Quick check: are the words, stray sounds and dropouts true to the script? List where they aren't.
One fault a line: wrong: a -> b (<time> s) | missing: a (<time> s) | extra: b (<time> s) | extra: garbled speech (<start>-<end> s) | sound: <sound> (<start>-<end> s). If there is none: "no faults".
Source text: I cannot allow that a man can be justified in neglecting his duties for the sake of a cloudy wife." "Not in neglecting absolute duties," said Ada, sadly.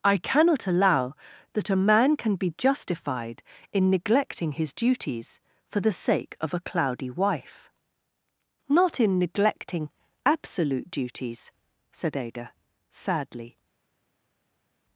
no faults